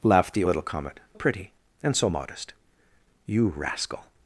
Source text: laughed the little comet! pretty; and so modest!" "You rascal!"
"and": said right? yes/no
yes